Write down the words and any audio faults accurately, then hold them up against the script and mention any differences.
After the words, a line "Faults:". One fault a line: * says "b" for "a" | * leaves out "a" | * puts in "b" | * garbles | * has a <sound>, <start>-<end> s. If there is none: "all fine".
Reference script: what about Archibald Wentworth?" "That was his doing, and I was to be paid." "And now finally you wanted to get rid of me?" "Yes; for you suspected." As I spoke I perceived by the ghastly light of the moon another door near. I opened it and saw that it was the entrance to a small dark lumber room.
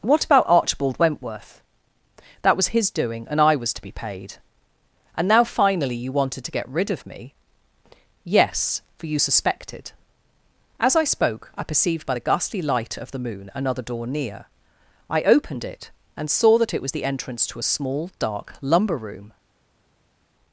what about Archibald Wentworth?" "That was his doing, and I was to be paid." "And now finally you wanted to get rid of me?" "Yes; for you suspected." As I spoke I perceived by the ghastly light of the moon another door near. I opened it and saw that it was the entrance to a small dark lumber room.
Faults:
all fine